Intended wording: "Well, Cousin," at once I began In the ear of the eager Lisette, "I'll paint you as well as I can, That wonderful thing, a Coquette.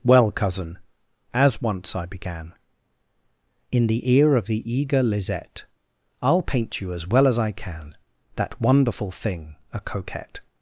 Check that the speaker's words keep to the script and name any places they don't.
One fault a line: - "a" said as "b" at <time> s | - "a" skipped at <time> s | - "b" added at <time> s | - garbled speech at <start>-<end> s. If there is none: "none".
- "at" said as "as" at 1.3 s